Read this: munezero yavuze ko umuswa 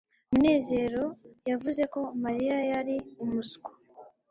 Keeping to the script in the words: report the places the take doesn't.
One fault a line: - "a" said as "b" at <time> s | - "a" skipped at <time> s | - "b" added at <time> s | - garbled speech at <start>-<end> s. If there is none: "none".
- "mariya yari" added at 2.2 s